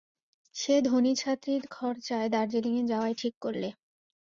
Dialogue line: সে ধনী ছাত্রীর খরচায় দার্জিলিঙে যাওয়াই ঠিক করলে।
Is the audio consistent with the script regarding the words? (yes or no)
yes